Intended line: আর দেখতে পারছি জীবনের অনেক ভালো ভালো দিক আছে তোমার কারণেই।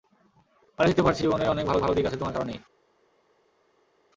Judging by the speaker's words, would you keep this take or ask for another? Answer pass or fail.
pass